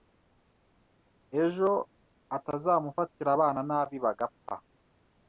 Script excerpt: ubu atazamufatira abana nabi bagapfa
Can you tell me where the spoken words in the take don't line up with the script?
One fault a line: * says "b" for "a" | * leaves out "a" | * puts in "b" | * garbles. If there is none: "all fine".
* says "ejo" for "ubu"